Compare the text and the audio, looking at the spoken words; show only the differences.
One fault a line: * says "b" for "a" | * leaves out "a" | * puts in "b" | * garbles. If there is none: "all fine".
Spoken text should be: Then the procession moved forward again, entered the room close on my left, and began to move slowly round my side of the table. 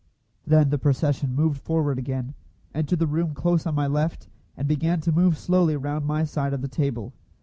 all fine